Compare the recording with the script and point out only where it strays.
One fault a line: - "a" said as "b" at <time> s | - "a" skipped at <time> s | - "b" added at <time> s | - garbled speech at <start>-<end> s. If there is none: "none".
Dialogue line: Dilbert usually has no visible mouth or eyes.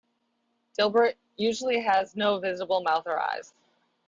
none